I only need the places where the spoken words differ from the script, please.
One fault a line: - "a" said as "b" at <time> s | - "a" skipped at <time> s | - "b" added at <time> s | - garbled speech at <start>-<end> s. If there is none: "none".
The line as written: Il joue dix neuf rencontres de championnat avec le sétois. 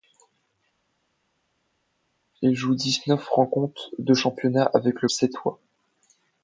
none